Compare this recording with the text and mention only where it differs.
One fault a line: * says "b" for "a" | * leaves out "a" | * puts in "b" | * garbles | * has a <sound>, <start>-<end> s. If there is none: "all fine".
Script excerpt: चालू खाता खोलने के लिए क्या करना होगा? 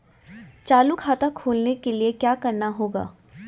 all fine